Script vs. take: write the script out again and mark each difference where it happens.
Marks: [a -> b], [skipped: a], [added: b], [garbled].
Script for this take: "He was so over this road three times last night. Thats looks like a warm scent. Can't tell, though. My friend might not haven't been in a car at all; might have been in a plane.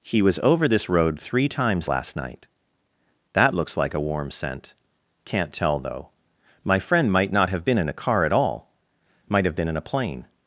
"He was [skipped: so] over this road three times last night. [Thats -> That] looks like a warm scent. Can't tell, though. My friend might not [haven't -> have] been in a car at all; might have been in a plane.